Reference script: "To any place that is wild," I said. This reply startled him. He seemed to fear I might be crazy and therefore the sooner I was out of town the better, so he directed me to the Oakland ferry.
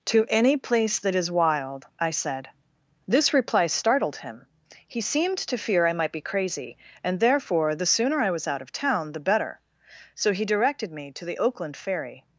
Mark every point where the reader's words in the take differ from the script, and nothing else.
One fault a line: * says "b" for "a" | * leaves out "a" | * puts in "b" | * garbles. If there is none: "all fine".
all fine